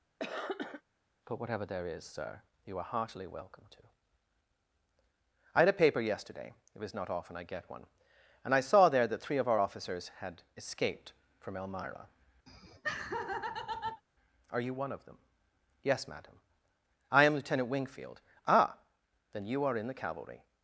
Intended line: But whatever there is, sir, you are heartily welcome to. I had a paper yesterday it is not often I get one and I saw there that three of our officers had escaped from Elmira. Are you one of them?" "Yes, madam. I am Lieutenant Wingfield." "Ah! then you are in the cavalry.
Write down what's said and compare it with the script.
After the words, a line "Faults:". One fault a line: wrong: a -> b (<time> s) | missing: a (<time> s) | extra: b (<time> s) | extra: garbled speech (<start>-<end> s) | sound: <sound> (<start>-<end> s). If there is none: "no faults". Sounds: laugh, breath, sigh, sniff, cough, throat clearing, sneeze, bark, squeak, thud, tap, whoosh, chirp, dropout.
But whatever there is, sir, you are heartily welcome to. I had a paper yesterday it was not often I get one and I saw there that three of our officers had escaped from Elmira. Are you one of them?" "Yes, madam. I am Lieutenant Wingfield." "Ah! then you are in the cavalry.
Faults:
sound: cough (0.2-0.8 s)
wrong: is -> was (6.8 s)
sound: laugh (12.5-14.0 s)